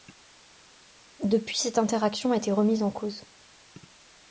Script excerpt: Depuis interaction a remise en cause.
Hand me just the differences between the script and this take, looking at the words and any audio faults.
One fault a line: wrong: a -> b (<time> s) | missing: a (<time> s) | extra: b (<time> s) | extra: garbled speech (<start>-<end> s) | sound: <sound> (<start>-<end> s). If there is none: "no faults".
extra: cette (1.6 s)
extra: été (2.4 s)